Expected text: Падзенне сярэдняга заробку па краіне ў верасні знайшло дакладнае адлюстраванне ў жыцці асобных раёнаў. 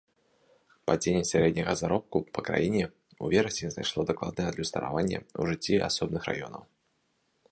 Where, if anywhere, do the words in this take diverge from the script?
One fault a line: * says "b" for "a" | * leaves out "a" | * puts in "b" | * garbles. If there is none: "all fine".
all fine